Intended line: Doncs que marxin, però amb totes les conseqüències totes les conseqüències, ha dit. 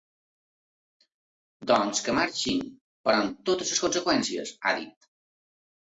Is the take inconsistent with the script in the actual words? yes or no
yes